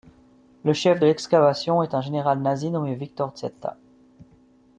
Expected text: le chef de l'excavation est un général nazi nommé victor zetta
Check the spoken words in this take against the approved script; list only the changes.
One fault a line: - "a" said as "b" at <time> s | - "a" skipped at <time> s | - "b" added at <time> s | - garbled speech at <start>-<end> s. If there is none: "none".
none